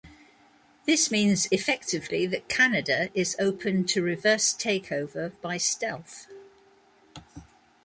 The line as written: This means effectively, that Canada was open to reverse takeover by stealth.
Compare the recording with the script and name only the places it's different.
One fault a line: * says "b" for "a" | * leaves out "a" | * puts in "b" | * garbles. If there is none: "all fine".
* says "is" for "was"